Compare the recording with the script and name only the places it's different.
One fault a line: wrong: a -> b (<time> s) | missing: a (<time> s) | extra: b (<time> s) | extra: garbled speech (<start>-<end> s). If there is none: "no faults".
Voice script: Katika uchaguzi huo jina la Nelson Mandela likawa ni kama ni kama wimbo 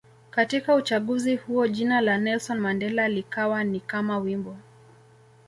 missing: ni kama (4.2 s)